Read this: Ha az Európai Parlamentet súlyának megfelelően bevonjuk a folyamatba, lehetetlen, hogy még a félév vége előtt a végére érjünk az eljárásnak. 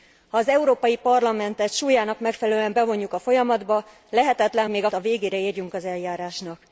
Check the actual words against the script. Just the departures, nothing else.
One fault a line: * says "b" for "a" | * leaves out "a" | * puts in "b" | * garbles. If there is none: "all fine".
* leaves out "hogy"
* leaves out "félév vége előtt"